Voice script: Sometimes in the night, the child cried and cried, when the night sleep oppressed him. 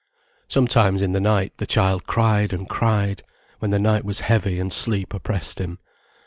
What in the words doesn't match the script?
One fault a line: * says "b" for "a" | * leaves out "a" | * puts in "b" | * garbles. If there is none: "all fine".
* puts in "was heavy and"